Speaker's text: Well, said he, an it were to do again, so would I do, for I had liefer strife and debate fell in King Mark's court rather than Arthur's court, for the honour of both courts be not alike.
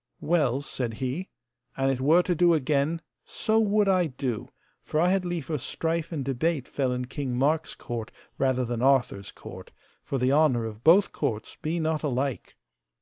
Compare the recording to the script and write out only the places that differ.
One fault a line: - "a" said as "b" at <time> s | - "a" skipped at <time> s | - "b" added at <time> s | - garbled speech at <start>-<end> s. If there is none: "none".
none